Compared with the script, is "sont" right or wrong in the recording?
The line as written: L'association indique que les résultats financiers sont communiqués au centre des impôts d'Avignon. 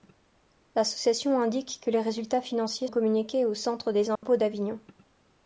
wrong